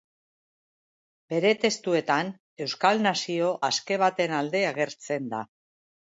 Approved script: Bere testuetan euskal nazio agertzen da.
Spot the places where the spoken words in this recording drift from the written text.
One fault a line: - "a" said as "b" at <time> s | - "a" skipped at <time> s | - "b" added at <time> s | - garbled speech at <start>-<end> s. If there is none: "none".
- "aske baten alde" added at 3.7 s